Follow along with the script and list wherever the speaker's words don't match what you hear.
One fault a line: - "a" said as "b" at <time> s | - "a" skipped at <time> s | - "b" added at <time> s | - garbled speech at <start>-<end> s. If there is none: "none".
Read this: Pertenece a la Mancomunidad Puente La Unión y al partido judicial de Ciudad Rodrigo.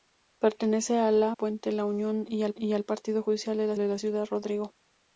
- "Mancomunidad" skipped at 1.4 s
- "y al" added at 2.6 s
- "de" added at 3.8 s